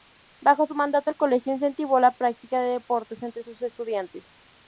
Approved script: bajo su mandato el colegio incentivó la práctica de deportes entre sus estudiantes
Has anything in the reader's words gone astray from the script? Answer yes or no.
no